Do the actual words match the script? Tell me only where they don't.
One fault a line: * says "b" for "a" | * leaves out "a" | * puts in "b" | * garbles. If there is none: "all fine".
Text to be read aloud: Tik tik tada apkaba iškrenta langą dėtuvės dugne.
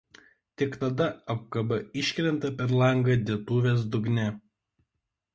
* leaves out "tik"
* puts in "per"